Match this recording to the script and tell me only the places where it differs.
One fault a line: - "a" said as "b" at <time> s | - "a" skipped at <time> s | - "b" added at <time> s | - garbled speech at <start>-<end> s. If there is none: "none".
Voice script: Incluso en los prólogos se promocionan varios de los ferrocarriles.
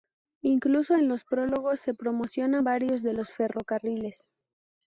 none